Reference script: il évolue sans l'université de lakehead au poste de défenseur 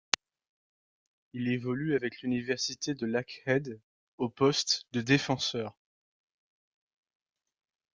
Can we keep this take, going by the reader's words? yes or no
no